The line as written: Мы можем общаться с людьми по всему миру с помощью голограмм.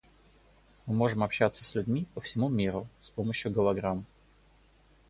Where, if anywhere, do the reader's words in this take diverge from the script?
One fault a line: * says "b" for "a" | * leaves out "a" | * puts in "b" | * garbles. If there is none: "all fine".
all fine